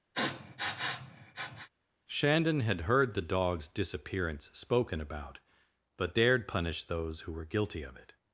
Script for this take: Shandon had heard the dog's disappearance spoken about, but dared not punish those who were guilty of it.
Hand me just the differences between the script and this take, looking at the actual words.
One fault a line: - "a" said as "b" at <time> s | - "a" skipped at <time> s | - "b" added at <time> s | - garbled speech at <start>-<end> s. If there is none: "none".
- "not" skipped at 6.5 s